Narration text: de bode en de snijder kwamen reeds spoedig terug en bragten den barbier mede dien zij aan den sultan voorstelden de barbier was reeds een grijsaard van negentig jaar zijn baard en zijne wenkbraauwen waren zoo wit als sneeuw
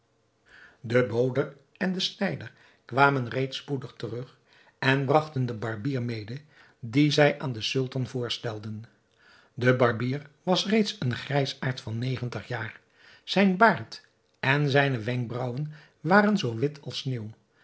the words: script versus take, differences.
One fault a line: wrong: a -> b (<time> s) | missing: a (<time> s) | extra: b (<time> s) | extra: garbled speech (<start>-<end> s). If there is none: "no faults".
no faults